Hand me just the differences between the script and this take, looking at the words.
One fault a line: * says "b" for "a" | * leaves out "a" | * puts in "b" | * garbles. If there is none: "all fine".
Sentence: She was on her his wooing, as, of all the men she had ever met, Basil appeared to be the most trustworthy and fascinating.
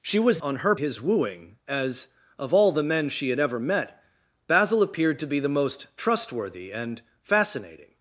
all fine